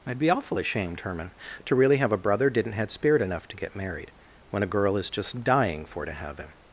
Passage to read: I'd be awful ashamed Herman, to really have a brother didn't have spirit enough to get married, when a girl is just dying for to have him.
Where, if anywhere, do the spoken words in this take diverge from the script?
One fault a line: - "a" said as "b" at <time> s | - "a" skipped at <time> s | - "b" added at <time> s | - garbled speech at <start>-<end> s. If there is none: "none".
- "have" said as "had" at 2.7 s